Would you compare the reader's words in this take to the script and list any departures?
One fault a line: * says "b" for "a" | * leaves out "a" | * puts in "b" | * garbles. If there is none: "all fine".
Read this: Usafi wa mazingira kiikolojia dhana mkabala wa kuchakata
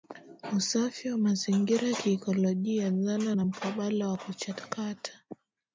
* puts in "na"